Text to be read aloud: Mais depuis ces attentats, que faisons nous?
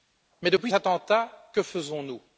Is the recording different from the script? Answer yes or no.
yes